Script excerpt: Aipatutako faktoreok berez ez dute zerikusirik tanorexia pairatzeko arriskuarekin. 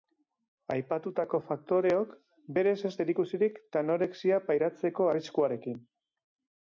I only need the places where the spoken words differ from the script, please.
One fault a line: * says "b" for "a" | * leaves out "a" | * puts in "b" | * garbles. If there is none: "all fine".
* leaves out "dute"